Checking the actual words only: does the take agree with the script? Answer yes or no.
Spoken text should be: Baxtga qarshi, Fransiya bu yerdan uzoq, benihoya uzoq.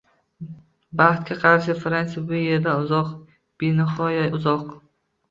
yes